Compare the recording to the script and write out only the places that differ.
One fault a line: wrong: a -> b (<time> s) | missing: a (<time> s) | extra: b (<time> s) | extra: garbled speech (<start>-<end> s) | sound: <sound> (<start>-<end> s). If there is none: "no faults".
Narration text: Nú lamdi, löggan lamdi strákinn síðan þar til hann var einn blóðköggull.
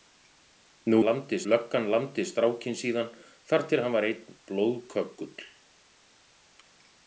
no faults